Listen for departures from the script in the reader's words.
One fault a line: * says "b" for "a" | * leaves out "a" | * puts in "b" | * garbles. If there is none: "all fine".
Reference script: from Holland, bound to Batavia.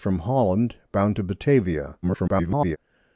* garbles